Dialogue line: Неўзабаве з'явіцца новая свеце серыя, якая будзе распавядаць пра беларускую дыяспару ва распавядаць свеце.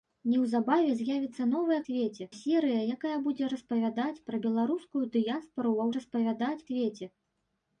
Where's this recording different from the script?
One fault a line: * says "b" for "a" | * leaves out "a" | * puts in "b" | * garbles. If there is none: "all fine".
all fine